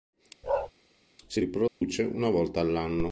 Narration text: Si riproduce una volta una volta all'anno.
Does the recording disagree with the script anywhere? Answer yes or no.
yes